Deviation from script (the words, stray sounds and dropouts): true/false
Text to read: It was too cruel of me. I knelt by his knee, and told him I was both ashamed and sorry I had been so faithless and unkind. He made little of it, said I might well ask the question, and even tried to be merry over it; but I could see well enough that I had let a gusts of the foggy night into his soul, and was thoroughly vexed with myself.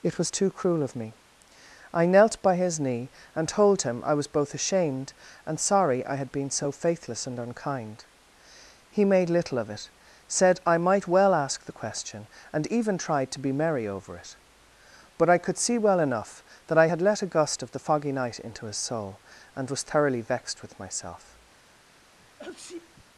true